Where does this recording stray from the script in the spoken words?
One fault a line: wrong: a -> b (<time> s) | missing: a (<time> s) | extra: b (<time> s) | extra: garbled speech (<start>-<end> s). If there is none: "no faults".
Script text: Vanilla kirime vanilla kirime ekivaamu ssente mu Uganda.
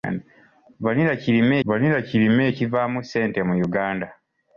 no faults